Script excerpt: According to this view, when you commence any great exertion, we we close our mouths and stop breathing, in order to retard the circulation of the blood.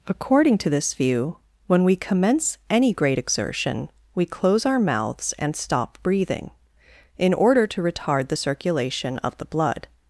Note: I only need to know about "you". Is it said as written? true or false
false